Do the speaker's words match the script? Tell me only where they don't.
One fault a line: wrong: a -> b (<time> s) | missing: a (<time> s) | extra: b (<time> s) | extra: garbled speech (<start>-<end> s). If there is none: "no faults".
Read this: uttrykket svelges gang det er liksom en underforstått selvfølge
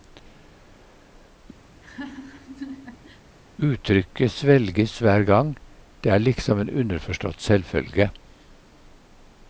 extra: hver (5.0 s)